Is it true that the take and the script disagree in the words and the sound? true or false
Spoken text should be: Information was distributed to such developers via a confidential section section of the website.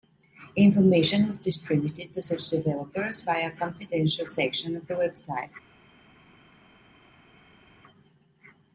true